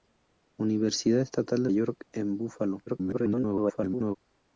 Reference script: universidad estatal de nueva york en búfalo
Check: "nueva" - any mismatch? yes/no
yes